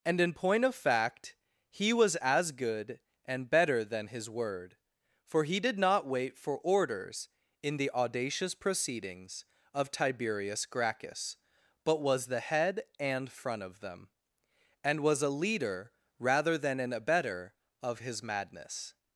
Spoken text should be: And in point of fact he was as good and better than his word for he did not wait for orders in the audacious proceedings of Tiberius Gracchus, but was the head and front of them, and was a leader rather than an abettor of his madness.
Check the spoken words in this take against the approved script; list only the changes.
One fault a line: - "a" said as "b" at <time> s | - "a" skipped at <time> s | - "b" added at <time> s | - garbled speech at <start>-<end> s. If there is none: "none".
none